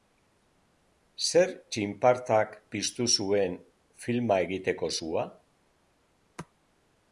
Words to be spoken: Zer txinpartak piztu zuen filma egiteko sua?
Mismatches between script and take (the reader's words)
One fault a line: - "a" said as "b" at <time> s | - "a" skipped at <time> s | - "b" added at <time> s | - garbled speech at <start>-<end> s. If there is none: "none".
none